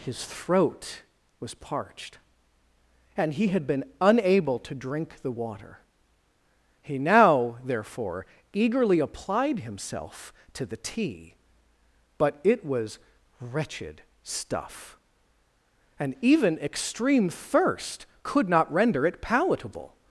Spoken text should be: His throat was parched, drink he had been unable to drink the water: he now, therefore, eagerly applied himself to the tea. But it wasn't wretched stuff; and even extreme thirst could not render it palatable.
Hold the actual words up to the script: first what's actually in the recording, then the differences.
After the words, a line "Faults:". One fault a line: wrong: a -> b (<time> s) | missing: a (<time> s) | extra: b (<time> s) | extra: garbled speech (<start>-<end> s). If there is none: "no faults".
His throat was parched, and he had been unable to drink the water: he now, therefore, eagerly applied himself to the tea. But it was wretched stuff; and even extreme thirst could not render it palatable.
Faults:
wrong: drink -> and (3.1 s)
wrong: wasn't -> was (12.7 s)